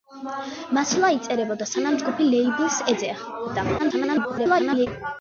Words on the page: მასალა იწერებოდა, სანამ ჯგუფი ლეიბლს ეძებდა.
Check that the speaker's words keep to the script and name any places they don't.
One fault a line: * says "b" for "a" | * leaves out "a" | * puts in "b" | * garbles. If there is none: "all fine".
* garbles